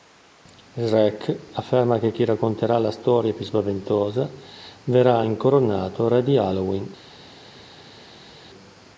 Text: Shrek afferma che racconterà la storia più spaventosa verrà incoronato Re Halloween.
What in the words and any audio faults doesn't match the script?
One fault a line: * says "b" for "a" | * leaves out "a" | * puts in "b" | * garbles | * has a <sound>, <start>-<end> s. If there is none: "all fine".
* puts in "chi"
* puts in "di"